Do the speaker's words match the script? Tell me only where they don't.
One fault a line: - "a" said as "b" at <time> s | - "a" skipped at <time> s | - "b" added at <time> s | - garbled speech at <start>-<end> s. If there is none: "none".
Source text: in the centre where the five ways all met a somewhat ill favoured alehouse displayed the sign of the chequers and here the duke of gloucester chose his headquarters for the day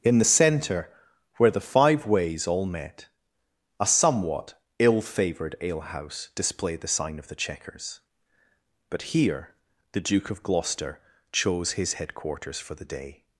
- "and" said as "but" at 8.9 s